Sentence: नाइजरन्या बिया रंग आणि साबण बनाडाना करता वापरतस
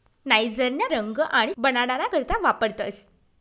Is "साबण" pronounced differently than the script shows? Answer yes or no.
yes